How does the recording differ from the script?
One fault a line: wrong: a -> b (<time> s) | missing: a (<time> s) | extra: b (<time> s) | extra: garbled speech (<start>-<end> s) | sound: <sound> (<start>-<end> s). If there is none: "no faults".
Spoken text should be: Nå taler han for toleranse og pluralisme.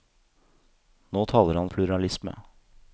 missing: for toleranse og (1.7 s)